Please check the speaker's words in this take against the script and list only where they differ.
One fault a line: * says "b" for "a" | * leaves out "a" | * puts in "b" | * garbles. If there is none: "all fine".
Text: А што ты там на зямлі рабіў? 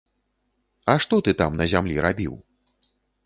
all fine